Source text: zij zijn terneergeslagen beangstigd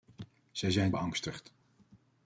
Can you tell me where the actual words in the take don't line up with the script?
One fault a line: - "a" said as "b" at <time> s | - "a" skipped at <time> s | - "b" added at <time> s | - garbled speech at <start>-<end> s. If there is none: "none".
- "terneergeslagen" skipped at 0.9 s